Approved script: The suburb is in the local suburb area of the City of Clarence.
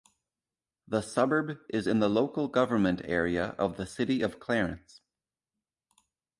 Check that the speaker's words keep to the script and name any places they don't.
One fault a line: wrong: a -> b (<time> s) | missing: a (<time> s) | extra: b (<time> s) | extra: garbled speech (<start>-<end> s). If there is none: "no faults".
wrong: suburb -> government (2.5 s)